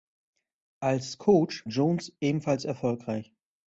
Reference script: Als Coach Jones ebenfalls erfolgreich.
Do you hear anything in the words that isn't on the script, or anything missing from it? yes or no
no